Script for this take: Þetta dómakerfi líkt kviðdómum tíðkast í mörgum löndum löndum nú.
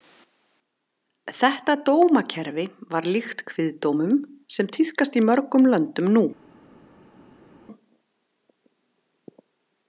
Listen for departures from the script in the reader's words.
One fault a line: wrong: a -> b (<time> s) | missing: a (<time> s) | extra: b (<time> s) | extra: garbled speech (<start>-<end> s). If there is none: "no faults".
extra: var (3.0 s)
extra: sem (4.6 s)
missing: löndum (6.1 s)